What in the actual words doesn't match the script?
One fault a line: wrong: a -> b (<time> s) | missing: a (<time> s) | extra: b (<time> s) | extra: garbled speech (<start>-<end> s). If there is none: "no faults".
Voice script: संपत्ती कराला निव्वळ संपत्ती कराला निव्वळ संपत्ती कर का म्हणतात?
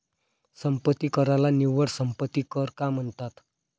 missing: कराला निव्वळ संपत्ती (2.4 s)